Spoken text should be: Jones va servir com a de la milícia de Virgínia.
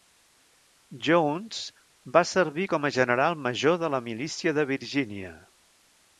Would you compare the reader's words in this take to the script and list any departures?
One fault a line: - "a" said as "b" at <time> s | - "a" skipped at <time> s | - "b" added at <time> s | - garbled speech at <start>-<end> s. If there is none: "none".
- "general major" added at 3.0 s